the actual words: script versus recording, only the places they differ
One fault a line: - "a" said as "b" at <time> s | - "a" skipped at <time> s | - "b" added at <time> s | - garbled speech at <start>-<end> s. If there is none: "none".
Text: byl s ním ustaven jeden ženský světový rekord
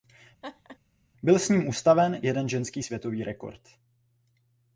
none